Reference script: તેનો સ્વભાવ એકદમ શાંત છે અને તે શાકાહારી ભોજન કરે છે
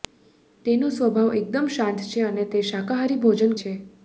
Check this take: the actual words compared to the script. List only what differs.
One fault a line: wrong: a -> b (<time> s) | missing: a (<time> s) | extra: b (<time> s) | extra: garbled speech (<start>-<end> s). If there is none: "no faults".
missing: કરે (3.6 s)